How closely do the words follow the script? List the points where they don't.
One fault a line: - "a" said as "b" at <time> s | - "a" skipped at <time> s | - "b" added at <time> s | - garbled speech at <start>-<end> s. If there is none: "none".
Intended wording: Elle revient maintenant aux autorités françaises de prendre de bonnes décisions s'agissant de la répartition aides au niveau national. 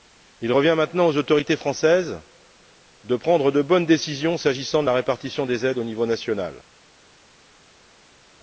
- "Elle" said as "Il" at 0.4 s
- "des" added at 5.5 s